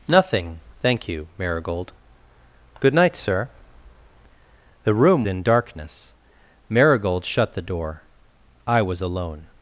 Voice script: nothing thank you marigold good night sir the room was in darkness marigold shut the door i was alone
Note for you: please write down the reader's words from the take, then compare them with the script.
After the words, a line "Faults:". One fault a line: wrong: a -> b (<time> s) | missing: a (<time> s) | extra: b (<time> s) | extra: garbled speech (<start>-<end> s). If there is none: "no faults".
nothing thank you marigold good night sir the room in darkness marigold shut the door i was alone
Faults:
missing: was (5.2 s)